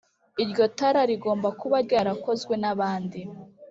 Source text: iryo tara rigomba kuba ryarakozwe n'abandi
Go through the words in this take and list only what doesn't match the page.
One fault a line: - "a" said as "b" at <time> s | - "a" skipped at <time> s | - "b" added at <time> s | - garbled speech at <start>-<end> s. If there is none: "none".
none